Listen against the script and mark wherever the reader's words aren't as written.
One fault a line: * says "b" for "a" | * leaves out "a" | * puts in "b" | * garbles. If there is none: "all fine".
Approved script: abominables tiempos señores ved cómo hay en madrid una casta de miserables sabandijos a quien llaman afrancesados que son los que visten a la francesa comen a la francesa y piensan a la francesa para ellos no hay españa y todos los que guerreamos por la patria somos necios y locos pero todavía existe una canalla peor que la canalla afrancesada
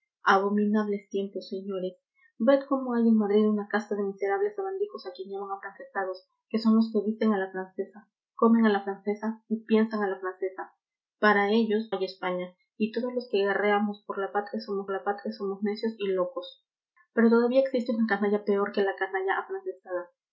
* leaves out "no"
* puts in "la patria somos"